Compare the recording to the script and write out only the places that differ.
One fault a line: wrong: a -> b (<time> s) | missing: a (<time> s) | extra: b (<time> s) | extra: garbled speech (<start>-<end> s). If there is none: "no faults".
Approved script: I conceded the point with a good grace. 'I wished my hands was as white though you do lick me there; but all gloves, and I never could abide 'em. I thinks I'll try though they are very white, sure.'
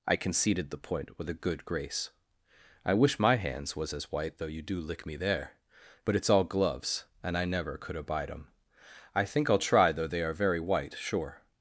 wrong: wished -> wish (2.9 s)
extra: it's (6.1 s)
wrong: thinks -> think (9.2 s)